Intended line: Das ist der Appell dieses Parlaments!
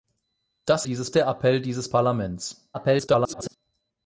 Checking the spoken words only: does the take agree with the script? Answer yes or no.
no